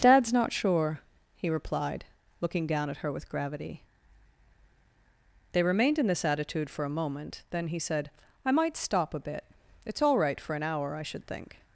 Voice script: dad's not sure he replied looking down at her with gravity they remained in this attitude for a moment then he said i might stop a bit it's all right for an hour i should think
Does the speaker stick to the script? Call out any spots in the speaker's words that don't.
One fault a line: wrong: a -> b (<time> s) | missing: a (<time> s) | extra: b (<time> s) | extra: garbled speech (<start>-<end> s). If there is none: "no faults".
no faults